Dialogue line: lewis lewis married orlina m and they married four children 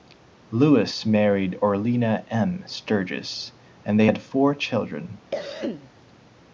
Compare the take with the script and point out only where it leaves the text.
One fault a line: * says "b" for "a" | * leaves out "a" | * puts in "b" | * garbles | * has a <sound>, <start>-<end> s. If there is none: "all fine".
* leaves out "lewis"
* puts in "sturgis"
* says "had" for "married"
* has a cough, 5.3-5.9 s